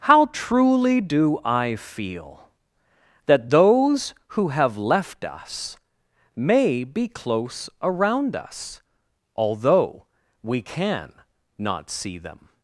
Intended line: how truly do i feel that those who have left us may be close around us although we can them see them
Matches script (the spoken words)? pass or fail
fail